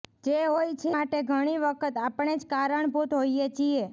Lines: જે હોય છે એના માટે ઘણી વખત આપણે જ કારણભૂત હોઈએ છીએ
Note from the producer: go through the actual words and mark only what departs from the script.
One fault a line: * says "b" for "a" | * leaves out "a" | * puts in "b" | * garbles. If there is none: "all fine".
* leaves out "એના"